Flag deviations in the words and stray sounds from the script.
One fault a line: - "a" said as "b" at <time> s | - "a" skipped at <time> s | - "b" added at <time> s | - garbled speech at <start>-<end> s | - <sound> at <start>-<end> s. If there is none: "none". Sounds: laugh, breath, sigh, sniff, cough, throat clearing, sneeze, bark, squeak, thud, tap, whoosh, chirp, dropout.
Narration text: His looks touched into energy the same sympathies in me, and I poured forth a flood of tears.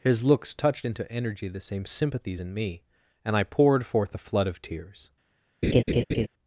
- laugh at 5.6-6.3 s